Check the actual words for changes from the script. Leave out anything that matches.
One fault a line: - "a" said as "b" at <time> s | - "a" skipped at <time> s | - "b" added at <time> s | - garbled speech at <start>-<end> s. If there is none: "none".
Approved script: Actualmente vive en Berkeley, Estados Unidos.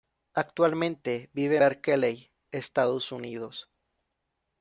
- "en" skipped at 1.6 s